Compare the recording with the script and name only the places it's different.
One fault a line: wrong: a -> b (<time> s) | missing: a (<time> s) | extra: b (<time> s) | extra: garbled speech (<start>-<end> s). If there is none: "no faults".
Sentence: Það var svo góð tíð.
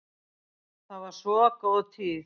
no faults